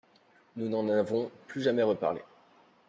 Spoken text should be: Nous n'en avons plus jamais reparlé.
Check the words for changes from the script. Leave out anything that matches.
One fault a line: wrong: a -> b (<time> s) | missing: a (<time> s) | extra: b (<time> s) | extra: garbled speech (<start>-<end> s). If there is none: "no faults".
no faults